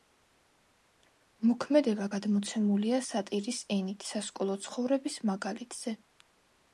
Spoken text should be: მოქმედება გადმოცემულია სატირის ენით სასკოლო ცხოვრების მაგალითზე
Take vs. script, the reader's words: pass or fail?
pass